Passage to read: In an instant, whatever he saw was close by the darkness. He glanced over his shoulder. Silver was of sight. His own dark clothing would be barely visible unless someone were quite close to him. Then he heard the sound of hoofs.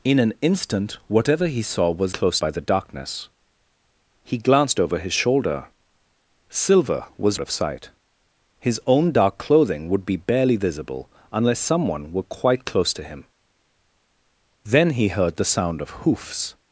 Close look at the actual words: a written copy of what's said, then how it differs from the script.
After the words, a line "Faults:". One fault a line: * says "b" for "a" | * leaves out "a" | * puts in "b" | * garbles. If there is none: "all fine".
In an instant, whatever he saw was close by the darkness. He glanced over his shoulder. Silver was of sight. His own dark clothing would be barely visible unless someone were quite close to him. Then he heard the sound of hoofs.
Faults:
all fine